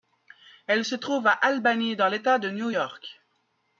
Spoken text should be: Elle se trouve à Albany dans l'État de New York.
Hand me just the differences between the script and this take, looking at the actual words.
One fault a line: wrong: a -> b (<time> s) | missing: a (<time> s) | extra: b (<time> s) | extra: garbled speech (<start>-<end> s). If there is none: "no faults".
no faults